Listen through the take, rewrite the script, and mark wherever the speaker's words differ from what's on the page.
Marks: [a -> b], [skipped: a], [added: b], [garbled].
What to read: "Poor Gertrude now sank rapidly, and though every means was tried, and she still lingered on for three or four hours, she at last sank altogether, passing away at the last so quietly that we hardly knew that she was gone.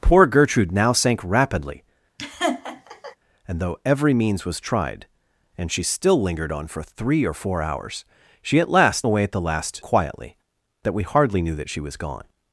"Poor Gertrude now sank rapidly, and though every means was tried, and she still lingered on for three or four hours, she at last [skipped: sank altogether, passing] away at the last [skipped: so] quietly that we hardly knew that she was gone.